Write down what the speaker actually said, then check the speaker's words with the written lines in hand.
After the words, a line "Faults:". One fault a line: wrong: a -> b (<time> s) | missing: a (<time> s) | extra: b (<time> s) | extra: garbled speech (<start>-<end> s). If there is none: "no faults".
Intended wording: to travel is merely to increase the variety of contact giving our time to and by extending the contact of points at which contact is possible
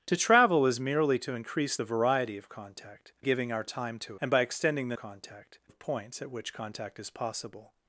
to travel is merely to increase the variety of contact giving our time to and by extending the contact of points at which contact is possible
Faults:
no faults